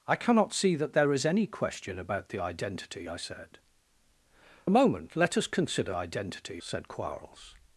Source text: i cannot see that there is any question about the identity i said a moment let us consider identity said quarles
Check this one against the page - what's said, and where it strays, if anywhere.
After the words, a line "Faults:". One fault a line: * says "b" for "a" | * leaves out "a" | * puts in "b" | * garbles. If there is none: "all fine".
i cannot see that there is any question about the identity i said a moment let us consider identity said quarles
Faults:
all fine